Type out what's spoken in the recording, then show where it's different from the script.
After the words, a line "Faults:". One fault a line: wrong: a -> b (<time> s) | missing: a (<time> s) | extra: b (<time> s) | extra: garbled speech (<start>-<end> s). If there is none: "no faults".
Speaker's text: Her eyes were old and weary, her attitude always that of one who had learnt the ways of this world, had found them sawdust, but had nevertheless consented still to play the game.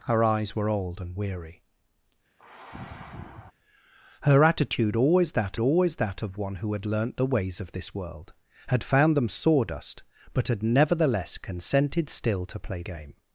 Her eyes were old and weary, her attitude always that always that of one who had learnt the ways of this world, had found them sawdust, but had nevertheless consented still to play game.
Faults:
extra: always that (5.6 s)
missing: the (12.8 s)